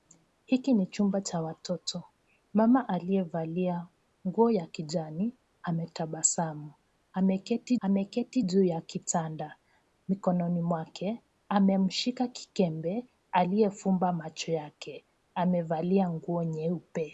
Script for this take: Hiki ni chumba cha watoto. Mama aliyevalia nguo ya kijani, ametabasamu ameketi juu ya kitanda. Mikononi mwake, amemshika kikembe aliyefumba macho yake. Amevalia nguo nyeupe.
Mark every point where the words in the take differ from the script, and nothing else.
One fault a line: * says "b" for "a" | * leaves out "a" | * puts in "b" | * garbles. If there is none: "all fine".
* puts in "ameketi"